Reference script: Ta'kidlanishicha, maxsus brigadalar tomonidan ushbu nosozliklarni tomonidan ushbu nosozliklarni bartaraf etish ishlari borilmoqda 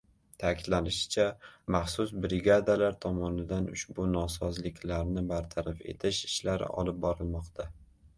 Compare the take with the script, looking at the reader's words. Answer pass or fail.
fail